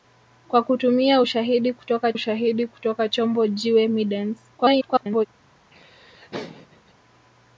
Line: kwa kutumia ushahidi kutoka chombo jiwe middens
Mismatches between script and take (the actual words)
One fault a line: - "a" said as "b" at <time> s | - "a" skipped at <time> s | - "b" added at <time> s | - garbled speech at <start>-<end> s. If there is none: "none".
- "ushahidi kutoka" added at 2.1 s
- garbled speech at 4.6-5.3 s